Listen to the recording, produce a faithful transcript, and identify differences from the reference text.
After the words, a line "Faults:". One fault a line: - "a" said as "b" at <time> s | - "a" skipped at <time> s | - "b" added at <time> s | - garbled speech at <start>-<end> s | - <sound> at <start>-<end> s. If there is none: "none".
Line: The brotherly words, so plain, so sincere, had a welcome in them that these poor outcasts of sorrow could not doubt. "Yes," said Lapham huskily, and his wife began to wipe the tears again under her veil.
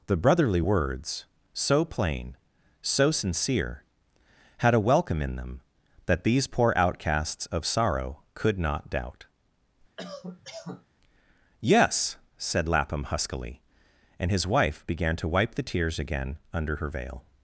The brotherly words, so plain, so sincere, had a welcome in them that these poor outcasts of sorrow could not doubt. "Yes," said Lapham huskily, and his wife began to wipe the tears again under her veil.
Faults:
- cough at 10.0-10.9 s